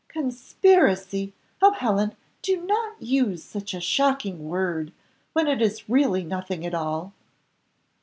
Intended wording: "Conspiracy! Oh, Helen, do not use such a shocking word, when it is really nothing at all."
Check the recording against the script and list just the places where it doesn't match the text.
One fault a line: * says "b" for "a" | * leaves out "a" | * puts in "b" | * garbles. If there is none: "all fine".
all fine